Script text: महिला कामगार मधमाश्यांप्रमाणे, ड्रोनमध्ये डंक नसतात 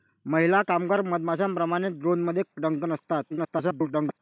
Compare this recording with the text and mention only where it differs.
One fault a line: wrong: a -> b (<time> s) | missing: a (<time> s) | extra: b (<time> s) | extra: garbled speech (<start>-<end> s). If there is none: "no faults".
extra: garbled speech (3.3-4.2 s)